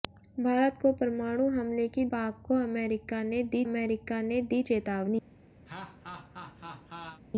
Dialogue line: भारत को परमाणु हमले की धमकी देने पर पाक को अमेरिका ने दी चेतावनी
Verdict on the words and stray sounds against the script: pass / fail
fail